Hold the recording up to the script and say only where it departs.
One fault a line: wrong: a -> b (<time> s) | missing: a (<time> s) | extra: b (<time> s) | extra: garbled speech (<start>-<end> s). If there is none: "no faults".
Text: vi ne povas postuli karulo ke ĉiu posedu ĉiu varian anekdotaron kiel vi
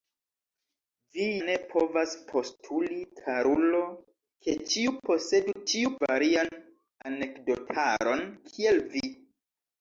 no faults